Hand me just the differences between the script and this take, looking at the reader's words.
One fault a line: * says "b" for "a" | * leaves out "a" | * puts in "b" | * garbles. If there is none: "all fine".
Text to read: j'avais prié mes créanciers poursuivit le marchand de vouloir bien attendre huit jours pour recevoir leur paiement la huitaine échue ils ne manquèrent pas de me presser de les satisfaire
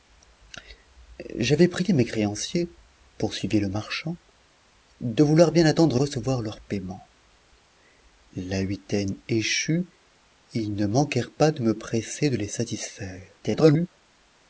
* leaves out "huit jours pour"
* garbles